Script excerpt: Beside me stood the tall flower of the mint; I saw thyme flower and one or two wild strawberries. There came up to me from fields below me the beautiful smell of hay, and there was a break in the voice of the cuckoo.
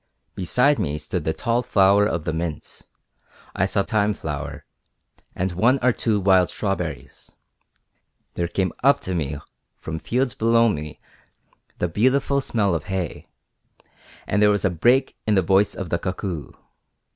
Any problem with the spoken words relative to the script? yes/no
no